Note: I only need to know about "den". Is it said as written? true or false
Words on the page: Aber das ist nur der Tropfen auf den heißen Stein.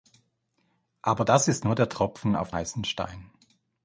false